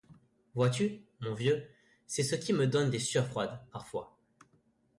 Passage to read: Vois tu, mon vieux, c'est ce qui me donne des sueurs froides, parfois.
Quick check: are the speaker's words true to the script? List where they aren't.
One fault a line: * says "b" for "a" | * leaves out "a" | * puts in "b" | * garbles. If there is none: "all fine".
all fine